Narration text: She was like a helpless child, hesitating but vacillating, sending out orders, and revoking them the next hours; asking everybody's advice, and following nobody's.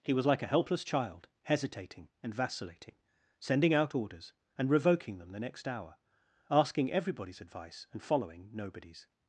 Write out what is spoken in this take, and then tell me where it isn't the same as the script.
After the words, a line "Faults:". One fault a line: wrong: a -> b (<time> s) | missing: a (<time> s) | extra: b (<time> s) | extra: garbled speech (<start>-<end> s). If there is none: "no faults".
He was like a helpless child, hesitating and vacillating, sending out orders, and revoking them the next hour; asking everybody's advice, and following nobody's.
Faults:
wrong: She -> He (0.0 s)
wrong: but -> and (2.2 s)
wrong: hours -> hour (5.7 s)